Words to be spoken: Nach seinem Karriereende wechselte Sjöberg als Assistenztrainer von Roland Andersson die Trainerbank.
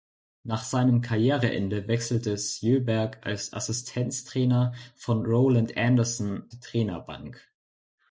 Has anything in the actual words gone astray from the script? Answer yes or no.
no